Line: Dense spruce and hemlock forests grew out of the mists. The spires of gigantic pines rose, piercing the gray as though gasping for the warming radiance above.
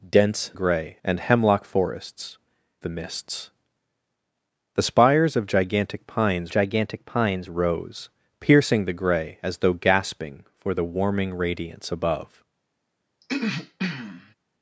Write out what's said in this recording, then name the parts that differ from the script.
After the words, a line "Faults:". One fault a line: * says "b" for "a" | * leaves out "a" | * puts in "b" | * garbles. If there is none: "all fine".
Dense gray and hemlock forests the mists. The spires of gigantic pines gigantic pines rose, piercing the gray as though gasping for the warming radiance above.
Faults:
* says "gray" for "spruce"
* leaves out "grew out of"
* puts in "gigantic pines"